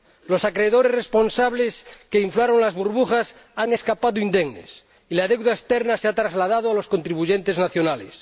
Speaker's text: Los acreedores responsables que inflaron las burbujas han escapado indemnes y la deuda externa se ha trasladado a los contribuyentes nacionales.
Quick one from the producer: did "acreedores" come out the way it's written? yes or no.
yes